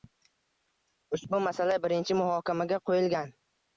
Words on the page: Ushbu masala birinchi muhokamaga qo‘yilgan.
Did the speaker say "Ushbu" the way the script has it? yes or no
yes